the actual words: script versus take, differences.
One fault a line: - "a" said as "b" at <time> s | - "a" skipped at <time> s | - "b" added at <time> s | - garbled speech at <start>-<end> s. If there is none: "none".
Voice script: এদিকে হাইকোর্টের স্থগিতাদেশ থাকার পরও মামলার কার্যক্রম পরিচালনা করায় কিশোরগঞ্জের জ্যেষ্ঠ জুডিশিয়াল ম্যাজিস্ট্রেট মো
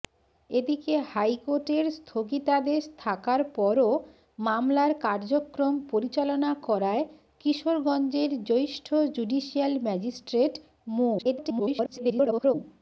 - garbled speech at 11.2-12.5 s